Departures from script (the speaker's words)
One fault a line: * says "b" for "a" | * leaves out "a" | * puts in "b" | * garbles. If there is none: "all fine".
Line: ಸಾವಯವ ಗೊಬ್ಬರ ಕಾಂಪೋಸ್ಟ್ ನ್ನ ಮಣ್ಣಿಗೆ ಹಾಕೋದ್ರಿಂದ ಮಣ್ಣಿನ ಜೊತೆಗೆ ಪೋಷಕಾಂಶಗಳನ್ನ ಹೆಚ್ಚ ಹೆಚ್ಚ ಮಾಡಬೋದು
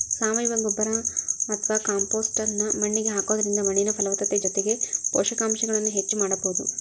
* puts in "ಅತ್ವಾ"
* puts in "ಫಲವತ್ತತೆ"
* leaves out "ಹೆಚ್ಚ"